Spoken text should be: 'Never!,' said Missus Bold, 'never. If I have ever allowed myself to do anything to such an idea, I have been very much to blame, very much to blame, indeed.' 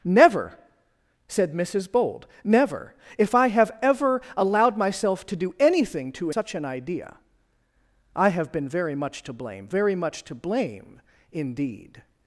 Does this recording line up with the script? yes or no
yes